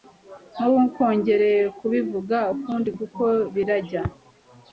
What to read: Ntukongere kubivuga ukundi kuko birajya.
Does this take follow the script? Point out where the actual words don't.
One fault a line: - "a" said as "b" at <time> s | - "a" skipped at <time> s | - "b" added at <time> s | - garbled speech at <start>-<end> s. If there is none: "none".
none